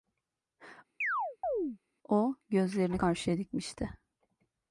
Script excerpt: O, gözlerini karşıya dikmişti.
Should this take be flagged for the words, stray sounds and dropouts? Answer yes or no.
yes